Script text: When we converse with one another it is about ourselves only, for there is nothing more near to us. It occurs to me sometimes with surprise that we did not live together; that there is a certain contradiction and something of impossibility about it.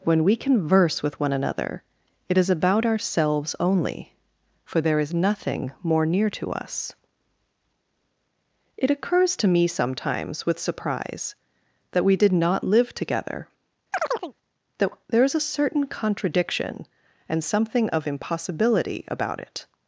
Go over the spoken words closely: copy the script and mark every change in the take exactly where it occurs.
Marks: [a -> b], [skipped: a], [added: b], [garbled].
When we converse with one another it is about ourselves only, for there is nothing more near to us. It occurs to me sometimes with surprise that we did not live together; that there is a certain contradiction and something of impossibility about it.